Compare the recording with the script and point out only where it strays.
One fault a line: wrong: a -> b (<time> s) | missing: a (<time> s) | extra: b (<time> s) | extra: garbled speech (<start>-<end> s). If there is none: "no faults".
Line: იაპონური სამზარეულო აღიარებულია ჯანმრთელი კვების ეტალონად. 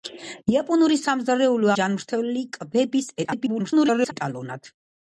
missing: აღიარებულია (1.7 s)
extra: garbled speech (3.2-4.1 s)